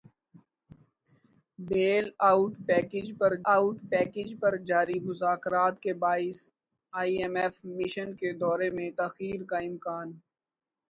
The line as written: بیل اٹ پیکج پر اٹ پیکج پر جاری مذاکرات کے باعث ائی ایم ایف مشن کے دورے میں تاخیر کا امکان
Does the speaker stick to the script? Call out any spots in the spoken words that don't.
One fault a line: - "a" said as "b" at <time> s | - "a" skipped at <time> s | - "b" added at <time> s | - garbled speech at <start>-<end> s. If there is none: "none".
none